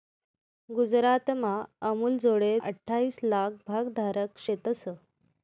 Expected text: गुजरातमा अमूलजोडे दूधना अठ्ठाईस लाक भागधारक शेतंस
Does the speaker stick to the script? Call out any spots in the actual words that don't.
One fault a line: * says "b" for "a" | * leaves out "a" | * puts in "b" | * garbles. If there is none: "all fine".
* leaves out "दूधना"